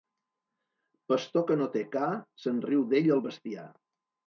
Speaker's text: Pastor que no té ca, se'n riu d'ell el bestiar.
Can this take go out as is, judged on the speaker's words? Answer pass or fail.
pass